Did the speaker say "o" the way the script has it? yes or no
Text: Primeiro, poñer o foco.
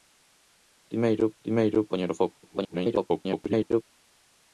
yes